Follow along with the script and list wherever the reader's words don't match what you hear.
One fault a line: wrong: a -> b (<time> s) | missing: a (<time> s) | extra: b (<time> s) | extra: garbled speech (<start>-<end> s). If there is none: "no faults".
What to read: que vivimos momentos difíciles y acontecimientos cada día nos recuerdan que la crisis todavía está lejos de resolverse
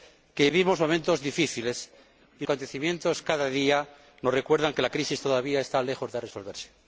no faults